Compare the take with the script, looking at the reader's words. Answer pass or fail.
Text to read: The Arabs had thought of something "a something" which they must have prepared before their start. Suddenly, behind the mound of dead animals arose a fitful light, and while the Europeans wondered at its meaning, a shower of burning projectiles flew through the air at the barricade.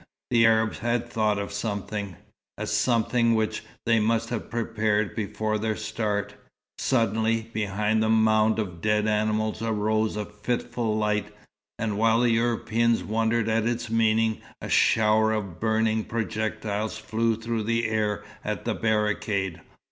pass